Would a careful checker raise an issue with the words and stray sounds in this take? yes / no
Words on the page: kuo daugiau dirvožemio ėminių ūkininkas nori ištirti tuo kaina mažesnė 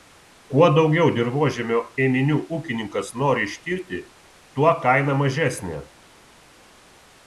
no